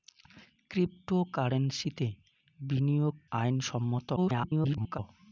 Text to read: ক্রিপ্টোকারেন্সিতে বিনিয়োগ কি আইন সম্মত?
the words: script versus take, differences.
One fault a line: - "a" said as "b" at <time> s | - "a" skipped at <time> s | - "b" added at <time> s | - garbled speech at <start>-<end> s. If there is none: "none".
- "কি" skipped at 3.1 s
- garbled speech at 4.2-5.0 s